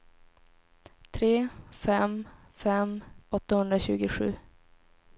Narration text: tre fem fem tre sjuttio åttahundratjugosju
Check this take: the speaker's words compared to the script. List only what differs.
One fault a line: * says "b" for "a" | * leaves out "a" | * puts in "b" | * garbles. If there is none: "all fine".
* leaves out "tre sjuttio"